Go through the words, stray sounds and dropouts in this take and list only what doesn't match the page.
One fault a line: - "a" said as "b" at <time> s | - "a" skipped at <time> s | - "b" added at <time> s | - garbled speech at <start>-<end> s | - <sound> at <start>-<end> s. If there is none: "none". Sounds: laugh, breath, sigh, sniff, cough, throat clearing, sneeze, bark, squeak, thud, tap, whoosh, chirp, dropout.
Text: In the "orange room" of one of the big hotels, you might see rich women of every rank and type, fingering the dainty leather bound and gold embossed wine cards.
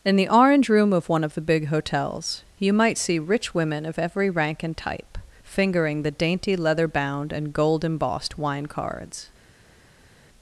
none